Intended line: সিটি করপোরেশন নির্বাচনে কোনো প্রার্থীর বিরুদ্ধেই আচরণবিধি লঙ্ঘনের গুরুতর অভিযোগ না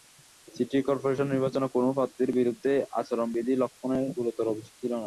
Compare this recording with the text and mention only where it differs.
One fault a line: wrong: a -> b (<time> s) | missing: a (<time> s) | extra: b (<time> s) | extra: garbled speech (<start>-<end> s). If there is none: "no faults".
extra: ছিল (4.8 s)